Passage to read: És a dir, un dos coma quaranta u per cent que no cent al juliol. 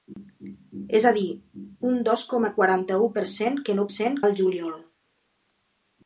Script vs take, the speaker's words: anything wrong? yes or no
no